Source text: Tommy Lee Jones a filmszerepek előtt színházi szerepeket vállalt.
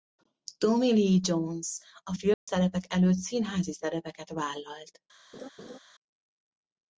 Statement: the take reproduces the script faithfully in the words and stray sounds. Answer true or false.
false